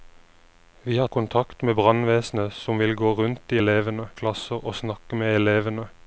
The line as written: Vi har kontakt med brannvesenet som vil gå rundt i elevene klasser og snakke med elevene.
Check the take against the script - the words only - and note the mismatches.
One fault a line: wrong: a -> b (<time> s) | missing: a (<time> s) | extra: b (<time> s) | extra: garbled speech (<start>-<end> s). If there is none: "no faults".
no faults